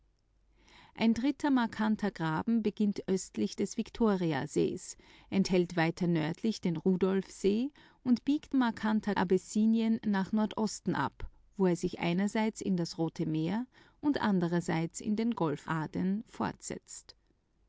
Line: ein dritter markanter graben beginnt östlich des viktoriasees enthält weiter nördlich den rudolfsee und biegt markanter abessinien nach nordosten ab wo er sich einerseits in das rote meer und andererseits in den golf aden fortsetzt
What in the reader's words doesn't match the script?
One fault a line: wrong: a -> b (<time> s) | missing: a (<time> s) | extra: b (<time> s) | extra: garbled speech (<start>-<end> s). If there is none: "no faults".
no faults